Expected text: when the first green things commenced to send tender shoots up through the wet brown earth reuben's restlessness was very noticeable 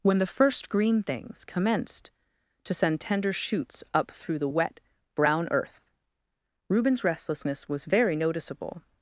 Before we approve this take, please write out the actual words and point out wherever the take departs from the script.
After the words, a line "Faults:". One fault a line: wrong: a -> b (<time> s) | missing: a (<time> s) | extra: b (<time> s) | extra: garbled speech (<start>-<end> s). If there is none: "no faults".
when the first green things commenced to send tender shoots up through the wet brown earth reuben's restlessness was very noticeable
Faults:
no faults